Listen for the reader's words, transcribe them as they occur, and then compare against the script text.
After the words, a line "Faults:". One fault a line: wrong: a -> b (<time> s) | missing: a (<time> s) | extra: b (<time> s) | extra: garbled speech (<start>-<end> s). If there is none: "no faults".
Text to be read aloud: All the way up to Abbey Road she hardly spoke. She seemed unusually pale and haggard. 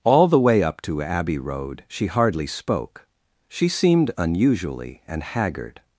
All the way up to Abbey Road she hardly spoke. She seemed unusually and haggard.
Faults:
missing: pale (5.0 s)